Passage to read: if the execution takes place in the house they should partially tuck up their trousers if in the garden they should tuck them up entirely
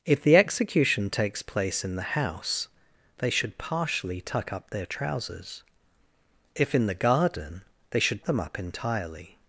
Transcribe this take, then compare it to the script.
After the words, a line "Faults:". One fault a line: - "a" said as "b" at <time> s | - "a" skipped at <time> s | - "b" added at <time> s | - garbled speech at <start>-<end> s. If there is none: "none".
if the execution takes place in the house they should partially tuck up their trousers if in the garden they should them up entirely
Faults:
- "tuck" skipped at 8.2 s